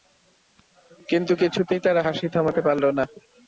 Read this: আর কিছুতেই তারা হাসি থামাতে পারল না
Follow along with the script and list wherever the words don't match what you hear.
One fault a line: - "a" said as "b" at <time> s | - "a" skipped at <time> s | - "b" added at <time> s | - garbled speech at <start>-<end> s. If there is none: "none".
- "আর" said as "কিন্তু" at 1.1 s